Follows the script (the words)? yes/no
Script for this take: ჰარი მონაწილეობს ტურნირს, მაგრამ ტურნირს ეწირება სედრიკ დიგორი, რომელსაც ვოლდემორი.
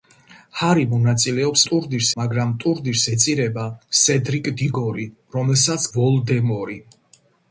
yes